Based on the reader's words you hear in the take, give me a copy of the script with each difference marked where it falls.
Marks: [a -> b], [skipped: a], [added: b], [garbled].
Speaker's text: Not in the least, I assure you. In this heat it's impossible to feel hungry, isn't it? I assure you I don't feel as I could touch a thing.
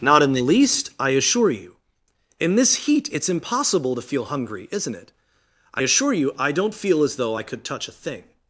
Not in the least, I assure you. In this heat it's impossible to feel hungry, isn't it? I assure you I don't feel as [added: though] I could touch a thing.